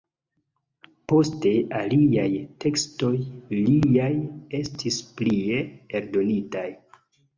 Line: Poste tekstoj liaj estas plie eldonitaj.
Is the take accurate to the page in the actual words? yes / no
no